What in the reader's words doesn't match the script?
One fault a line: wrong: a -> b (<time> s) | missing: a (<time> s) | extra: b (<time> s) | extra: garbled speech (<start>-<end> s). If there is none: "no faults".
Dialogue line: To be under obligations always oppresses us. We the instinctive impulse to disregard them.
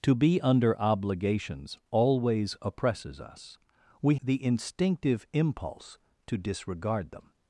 no faults